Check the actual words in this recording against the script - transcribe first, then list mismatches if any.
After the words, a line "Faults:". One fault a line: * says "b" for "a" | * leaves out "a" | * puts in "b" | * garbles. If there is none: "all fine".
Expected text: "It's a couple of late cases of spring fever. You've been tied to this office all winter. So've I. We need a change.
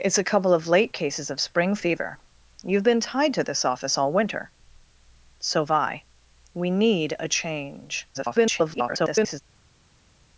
"It's a couple of late cases of spring fever. You've been tied to this office all winter. So've I. We need a change. [garbled]
Faults:
* garbles